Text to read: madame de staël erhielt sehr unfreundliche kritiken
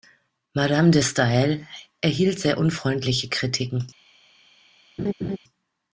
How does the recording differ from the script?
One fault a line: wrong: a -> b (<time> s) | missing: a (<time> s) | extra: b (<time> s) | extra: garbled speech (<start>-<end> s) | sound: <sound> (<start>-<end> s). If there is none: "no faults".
sound: laugh (5.0-5.4 s)